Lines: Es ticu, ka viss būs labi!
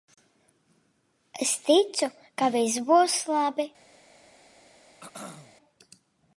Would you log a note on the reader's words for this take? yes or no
no